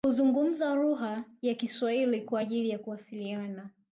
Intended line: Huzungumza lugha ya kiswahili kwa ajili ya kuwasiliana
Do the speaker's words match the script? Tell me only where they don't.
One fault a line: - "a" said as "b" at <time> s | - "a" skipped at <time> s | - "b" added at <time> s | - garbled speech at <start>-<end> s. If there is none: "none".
none